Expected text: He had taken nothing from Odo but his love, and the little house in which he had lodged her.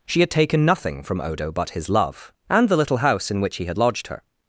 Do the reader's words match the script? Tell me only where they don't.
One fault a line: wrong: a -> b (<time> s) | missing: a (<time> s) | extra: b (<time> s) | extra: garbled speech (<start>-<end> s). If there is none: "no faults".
wrong: He -> She (0.1 s)